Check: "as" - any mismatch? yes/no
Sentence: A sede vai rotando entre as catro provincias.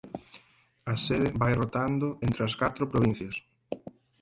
no